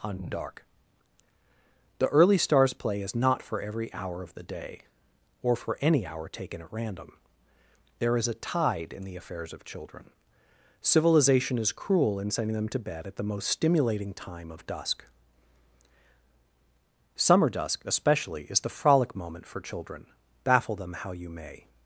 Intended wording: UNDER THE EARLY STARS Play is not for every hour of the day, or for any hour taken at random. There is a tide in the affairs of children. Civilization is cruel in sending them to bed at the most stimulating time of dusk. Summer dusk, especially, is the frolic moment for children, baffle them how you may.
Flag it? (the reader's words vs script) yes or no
yes